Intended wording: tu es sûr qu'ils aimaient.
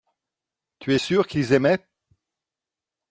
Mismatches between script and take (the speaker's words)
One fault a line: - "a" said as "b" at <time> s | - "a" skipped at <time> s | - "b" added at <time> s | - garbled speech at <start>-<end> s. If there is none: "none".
none